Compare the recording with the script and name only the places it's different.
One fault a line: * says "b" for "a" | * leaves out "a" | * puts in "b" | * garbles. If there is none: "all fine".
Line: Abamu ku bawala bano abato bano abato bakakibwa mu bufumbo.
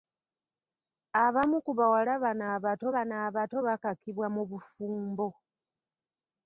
all fine